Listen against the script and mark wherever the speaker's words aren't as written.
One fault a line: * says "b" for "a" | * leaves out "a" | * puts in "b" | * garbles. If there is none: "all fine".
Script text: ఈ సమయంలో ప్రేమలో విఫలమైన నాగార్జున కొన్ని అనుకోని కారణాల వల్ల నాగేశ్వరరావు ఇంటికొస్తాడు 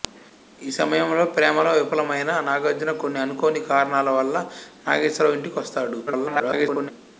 * garbles